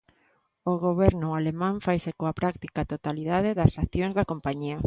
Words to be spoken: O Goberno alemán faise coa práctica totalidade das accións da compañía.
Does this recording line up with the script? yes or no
yes